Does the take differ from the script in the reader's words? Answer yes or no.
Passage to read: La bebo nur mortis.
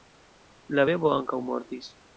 yes